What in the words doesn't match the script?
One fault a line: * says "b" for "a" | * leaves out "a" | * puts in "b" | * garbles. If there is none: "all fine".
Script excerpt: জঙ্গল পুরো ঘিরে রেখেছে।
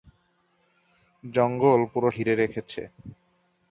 all fine